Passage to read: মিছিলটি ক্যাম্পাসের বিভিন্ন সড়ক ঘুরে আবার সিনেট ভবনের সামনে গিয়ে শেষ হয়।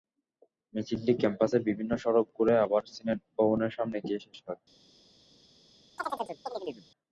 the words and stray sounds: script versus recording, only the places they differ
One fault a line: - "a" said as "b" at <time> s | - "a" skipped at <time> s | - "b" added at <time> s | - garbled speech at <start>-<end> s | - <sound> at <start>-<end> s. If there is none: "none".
- chirp at 6.0-6.9 s